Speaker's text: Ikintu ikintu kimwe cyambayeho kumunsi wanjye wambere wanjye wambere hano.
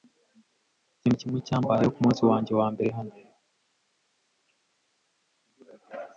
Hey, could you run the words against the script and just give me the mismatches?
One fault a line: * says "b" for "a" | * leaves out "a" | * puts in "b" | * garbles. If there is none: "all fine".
* leaves out "ikintu"
* leaves out "wanjye wambere"